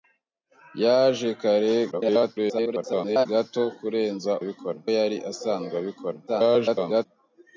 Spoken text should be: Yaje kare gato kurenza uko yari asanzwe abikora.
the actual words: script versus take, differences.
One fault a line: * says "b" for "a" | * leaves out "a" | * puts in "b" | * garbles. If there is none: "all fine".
* garbles
* says "abikora" for "uko"
* garbles